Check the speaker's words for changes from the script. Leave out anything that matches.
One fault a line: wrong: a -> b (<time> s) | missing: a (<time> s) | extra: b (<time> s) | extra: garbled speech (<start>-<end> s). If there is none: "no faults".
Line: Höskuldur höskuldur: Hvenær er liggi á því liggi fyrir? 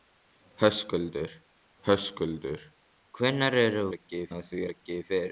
no faults